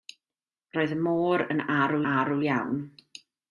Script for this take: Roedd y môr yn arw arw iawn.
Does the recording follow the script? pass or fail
pass